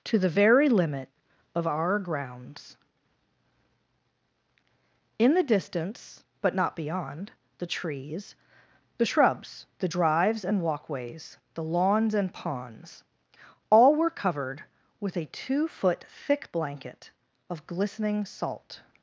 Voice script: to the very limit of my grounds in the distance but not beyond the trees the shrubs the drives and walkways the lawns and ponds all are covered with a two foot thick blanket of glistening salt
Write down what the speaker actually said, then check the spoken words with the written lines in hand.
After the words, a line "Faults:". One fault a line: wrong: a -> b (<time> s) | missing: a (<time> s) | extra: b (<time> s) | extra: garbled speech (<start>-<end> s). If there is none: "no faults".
to the very limit of our grounds in the distance but not beyond the trees the shrubs the drives and walkways the lawns and ponds all were covered with a two foot thick blanket of glistening salt
Faults:
wrong: my -> our (1.7 s)
wrong: are -> were (13.9 s)